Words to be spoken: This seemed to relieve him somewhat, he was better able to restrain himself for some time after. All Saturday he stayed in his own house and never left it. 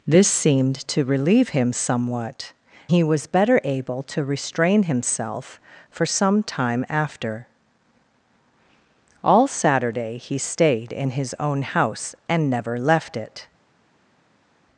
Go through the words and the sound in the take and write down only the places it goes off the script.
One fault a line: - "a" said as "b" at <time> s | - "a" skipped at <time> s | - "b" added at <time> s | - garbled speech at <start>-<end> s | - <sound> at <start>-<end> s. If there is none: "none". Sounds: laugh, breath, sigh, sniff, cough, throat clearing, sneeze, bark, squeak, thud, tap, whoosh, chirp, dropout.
none